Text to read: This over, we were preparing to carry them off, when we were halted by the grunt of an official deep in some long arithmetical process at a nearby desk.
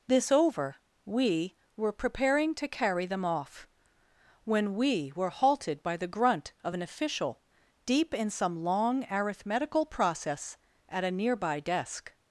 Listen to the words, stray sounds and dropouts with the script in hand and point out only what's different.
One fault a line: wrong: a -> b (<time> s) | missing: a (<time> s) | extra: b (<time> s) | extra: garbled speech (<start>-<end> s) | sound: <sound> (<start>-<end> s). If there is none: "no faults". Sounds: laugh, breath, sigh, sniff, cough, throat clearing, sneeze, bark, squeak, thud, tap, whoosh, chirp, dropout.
no faults